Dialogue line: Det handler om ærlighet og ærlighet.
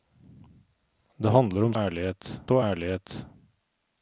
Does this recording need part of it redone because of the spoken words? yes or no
no